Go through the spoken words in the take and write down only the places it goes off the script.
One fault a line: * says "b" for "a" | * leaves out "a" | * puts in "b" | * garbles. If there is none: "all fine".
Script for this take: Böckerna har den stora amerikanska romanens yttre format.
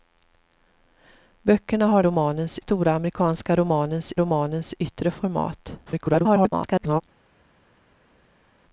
* says "romanens" for "den"
* puts in "romanens"
* garbles